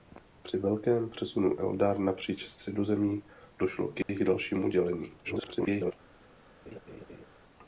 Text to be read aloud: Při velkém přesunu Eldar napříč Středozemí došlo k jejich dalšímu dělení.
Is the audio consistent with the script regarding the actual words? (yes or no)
no